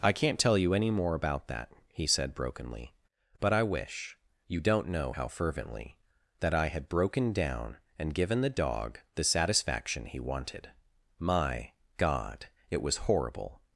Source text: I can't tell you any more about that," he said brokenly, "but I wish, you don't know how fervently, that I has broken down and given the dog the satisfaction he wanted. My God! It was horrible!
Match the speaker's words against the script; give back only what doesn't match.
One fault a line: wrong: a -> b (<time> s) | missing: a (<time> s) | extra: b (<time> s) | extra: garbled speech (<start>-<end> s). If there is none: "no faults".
wrong: has -> had (6.7 s)